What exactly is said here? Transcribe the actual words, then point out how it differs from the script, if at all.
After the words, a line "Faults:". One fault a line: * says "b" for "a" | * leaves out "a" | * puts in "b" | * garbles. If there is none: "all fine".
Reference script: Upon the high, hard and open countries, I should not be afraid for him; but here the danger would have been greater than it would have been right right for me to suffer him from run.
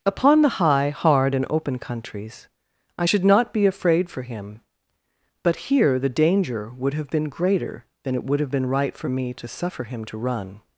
Upon the high, hard and open countries, I should not be afraid for him; but here the danger would have been greater than it would have been right for me to suffer him to run.
Faults:
* leaves out "right"
* says "to" for "from"